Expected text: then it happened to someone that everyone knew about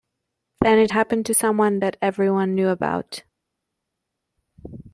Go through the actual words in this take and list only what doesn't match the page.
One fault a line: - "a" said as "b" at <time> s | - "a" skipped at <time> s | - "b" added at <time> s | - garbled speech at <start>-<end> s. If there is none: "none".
none